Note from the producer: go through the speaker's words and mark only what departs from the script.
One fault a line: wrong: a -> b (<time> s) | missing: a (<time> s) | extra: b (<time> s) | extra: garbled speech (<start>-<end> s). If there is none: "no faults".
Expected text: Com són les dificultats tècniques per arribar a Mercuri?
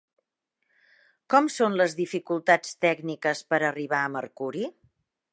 no faults